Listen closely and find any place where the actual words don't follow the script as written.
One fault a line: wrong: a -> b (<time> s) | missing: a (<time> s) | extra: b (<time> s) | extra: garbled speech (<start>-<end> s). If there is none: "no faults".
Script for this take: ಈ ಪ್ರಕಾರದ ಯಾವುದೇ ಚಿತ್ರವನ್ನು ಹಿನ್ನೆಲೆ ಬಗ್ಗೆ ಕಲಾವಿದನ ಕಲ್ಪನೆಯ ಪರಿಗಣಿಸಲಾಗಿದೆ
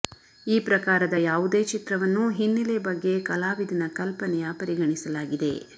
no faults